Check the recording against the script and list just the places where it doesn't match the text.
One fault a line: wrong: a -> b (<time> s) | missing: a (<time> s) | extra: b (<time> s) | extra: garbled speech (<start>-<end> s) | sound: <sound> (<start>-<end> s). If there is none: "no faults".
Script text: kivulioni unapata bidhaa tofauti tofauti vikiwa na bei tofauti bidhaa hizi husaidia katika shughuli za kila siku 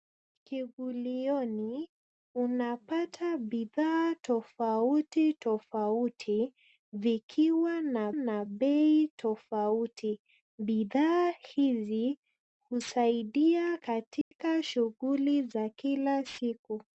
extra: na (8.1 s)
sound: dropout (14.2-14.3 s)